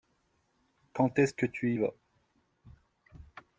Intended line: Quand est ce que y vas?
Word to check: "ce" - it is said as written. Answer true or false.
true